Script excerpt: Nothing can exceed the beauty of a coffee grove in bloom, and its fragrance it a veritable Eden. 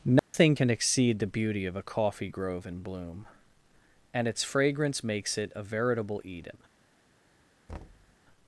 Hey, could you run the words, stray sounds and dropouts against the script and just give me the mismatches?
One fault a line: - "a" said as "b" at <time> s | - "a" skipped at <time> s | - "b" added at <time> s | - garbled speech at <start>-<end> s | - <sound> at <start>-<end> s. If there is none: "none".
- dropout at 0.2-0.3 s
- "makes" added at 5.0 s
- thud at 7.7-8.2 s